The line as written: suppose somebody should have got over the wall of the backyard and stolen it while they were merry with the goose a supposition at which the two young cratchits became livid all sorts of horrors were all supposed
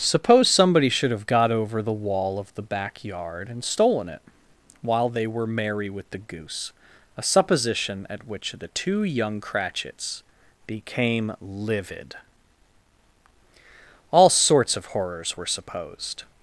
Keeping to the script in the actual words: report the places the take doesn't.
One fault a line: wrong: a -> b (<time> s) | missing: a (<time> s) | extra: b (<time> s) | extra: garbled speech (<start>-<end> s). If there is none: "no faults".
missing: all (15.5 s)